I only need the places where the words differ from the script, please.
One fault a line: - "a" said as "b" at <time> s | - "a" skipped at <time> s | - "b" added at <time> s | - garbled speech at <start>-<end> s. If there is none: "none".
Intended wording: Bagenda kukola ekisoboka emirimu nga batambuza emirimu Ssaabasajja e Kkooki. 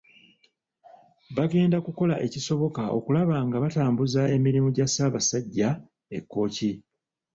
- "emirimu" said as "okulaba" at 3.0 s
- "gya" added at 4.8 s